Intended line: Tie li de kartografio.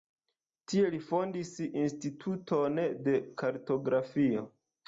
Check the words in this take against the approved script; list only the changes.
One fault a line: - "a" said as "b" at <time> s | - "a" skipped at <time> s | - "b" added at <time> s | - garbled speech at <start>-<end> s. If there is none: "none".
- "fondis instituton" added at 1.1 s